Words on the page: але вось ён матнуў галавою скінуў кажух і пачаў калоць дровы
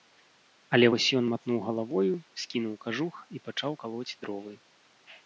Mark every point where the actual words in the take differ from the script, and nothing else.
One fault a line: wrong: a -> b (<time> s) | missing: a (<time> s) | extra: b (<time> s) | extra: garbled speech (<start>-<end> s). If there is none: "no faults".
no faults